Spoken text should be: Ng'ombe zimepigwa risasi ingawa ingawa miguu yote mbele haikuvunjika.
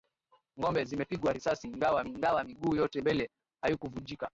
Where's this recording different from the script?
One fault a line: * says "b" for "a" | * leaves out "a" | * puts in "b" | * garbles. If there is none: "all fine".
all fine